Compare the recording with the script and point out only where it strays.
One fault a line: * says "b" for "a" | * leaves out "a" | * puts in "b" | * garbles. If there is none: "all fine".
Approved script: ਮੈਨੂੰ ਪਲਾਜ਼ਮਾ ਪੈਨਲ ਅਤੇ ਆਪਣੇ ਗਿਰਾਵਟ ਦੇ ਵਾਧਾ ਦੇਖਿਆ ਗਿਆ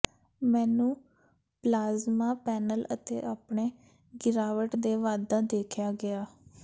all fine